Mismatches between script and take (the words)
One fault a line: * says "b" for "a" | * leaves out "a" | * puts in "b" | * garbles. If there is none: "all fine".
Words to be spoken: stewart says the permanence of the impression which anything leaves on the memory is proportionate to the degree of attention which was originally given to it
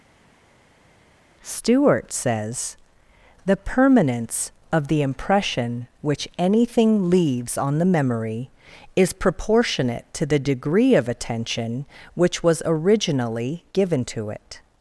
all fine